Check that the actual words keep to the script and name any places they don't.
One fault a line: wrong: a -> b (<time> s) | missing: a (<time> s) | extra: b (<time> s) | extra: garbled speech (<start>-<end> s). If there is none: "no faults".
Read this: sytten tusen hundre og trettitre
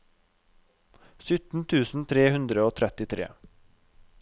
extra: tre (2.1 s)